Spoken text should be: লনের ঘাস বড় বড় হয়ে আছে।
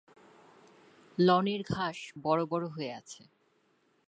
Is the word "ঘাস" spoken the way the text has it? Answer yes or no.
yes